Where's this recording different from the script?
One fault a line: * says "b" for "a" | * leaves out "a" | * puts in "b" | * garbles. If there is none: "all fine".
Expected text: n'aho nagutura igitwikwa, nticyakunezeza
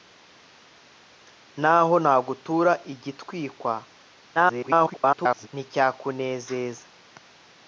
* garbles